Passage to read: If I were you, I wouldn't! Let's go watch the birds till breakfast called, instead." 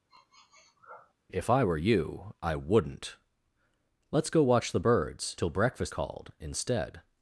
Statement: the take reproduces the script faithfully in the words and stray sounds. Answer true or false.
false